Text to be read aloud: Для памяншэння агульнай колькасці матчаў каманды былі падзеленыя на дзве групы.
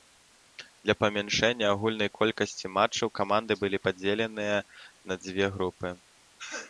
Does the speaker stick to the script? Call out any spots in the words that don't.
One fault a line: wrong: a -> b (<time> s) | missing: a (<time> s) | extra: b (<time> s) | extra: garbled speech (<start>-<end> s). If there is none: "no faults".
no faults